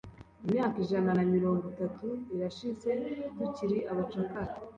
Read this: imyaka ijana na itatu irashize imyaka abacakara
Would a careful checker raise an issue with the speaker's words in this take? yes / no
yes